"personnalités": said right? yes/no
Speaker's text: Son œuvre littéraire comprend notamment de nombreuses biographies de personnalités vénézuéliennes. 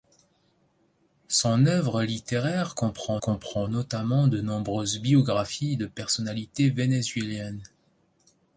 yes